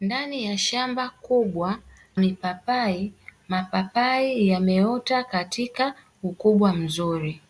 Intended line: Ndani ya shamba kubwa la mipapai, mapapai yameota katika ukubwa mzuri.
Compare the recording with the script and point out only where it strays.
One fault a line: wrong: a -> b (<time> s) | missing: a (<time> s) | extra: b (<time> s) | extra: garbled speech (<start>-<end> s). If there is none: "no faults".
missing: la (1.8 s)